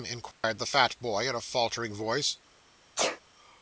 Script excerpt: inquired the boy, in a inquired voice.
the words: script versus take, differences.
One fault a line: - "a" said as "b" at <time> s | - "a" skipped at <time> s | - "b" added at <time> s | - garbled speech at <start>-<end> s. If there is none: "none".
- "fat" added at 0.6 s
- "inquired" said as "faltering" at 1.4 s